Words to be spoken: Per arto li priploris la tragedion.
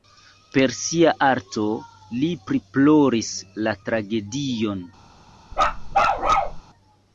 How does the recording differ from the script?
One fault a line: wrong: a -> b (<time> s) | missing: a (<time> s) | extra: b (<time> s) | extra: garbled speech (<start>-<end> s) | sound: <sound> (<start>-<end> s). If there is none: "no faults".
extra: sia (0.8 s)
sound: bark (5.5-6.6 s)